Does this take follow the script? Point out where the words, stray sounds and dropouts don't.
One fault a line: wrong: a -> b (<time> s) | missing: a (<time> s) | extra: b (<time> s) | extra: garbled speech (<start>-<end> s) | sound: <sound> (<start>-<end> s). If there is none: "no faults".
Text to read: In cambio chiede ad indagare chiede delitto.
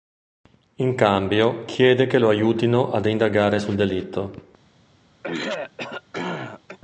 extra: che lo aiutino (2.1 s)
wrong: chiede -> sul (3.6 s)
sound: throat clearing (5.2-6.8 s)